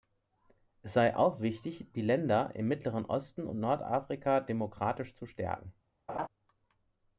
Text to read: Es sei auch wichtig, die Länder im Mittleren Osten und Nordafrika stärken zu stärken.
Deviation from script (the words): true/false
true